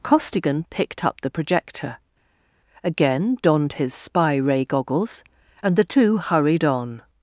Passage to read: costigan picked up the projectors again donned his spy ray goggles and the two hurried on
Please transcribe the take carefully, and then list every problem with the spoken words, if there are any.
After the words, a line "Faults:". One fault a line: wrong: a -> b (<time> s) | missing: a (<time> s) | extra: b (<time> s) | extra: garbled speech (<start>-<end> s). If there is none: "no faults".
costigan picked up the projector again donned his spy ray goggles and the two hurried on
Faults:
wrong: projectors -> projector (1.3 s)